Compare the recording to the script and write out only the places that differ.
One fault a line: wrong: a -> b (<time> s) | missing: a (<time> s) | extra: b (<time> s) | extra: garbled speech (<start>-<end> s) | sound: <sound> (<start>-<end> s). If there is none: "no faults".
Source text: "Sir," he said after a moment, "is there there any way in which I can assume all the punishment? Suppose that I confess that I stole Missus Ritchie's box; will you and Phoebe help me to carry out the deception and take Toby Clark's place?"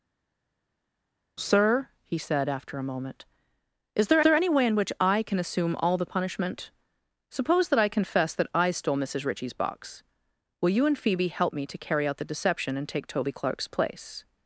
no faults